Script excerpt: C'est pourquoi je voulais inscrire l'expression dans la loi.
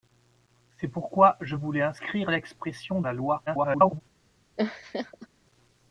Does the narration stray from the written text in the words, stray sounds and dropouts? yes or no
yes